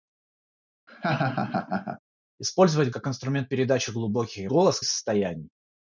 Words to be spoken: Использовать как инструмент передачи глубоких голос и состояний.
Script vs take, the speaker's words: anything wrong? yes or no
no